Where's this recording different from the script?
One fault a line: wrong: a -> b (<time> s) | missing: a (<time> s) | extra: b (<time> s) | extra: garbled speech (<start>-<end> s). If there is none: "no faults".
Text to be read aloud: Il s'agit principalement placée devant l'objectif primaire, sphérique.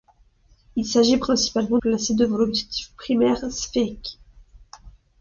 no faults